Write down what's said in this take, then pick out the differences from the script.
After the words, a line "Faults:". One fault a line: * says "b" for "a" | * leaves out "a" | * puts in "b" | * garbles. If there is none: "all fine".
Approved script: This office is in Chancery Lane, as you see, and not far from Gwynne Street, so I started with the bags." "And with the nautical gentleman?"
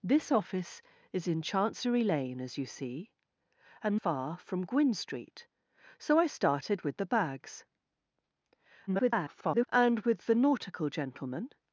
This office is in Chancery Lane, as you see, and far from Gwynne Street, so I started with the bags." [garbled] "And with the nautical gentleman?"
Faults:
* leaves out "not"
* garbles